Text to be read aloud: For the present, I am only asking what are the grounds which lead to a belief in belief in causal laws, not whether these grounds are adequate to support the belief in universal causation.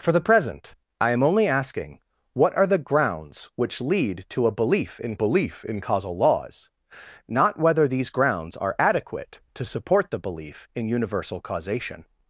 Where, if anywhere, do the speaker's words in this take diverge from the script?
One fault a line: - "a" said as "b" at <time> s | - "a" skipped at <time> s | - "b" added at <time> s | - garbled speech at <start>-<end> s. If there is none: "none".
none